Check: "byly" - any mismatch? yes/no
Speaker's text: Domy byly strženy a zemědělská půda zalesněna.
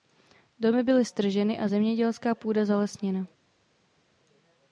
no